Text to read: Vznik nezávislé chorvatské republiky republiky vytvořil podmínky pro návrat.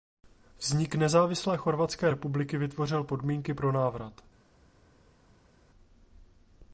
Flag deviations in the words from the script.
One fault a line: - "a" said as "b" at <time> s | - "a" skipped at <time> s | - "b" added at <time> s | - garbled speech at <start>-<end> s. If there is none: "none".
- "republiky" skipped at 2.6 s